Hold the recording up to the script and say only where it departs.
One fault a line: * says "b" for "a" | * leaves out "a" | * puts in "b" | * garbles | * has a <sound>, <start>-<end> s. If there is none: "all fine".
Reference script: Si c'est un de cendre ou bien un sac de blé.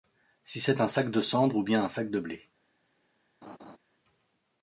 * puts in "sac"
* has a laugh, 3.4-3.8 s